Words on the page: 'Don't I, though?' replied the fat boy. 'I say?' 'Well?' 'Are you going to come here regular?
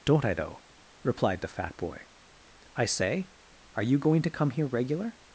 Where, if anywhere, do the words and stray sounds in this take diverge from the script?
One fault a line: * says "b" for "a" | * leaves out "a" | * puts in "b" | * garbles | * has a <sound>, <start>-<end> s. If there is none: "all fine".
* leaves out "Well"